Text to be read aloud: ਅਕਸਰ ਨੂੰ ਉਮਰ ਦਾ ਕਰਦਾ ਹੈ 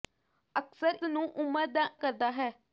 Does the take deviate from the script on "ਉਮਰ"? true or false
false